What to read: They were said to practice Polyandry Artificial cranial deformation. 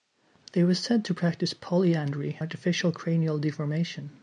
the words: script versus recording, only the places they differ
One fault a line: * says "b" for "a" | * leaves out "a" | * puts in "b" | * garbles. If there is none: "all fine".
all fine